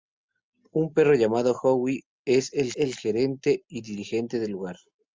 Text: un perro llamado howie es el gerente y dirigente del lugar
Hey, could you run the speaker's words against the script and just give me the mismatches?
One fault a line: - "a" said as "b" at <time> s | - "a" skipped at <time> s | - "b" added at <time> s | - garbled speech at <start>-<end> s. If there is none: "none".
- "el" added at 2.8 s